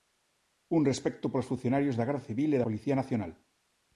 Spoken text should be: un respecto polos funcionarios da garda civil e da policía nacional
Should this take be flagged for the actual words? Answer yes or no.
yes